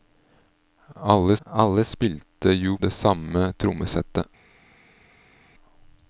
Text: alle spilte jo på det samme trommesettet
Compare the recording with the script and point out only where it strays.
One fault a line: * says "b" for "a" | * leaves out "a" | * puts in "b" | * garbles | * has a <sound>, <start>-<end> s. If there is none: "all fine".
* puts in "alle"
* leaves out "på"